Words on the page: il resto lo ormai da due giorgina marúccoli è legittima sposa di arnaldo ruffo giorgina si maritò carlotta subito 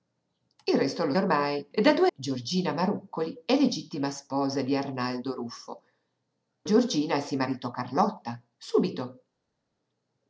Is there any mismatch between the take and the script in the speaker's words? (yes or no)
no